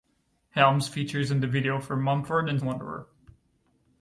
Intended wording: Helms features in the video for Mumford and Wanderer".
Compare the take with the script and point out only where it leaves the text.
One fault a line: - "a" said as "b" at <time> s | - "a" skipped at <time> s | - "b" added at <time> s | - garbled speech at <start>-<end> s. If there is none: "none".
none